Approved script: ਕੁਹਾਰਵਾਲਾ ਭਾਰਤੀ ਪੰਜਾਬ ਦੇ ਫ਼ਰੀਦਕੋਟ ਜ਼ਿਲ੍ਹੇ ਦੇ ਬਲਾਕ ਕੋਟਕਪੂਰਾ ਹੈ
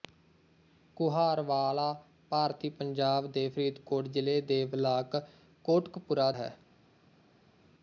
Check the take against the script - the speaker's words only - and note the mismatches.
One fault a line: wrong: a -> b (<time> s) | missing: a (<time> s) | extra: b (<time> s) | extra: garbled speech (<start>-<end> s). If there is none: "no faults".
no faults